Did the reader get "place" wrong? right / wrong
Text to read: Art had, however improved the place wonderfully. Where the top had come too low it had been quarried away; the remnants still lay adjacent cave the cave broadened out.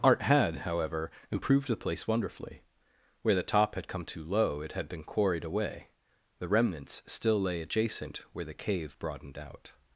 right